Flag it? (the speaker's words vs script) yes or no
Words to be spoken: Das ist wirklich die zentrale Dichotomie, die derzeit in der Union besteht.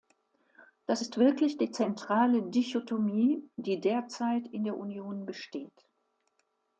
no